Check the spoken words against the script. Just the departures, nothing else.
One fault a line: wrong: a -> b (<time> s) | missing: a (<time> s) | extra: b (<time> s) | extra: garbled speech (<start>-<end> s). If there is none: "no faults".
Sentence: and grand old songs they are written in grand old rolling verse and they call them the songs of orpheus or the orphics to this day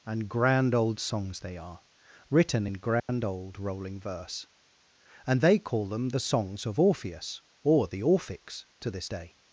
no faults